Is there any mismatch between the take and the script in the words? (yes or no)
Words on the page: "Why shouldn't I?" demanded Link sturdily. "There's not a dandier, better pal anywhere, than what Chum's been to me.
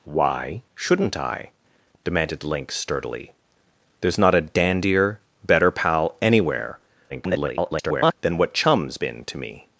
yes